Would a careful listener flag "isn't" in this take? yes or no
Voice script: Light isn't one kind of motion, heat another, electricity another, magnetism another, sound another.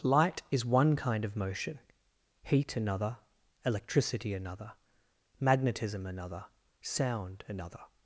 yes